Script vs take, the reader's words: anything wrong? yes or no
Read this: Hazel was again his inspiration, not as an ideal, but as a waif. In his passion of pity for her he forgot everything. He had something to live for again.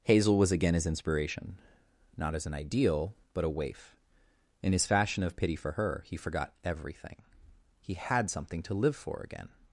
yes